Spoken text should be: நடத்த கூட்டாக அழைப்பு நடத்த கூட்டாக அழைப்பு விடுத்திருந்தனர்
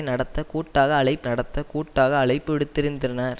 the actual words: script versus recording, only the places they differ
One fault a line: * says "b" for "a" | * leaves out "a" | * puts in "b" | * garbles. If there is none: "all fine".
all fine